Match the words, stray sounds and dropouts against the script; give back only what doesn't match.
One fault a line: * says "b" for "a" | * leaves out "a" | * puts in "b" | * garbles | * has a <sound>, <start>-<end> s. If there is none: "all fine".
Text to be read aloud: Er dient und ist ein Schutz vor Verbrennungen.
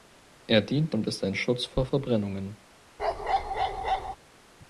* has a bark, 3.0-4.2 s